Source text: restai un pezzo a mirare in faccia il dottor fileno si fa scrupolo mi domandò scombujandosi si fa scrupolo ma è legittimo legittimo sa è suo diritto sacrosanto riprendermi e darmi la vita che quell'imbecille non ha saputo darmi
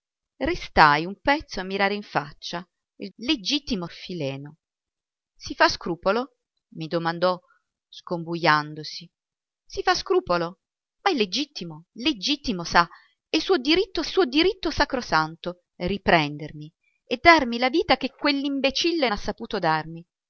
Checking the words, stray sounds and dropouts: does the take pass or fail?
fail